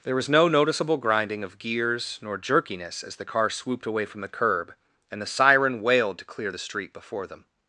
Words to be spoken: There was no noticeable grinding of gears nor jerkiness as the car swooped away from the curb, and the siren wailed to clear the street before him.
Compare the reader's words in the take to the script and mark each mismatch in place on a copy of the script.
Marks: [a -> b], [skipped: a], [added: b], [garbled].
There was no noticeable grinding of gears nor jerkiness as the car swooped away from the curb, and the siren wailed to clear the street before [him. -> them]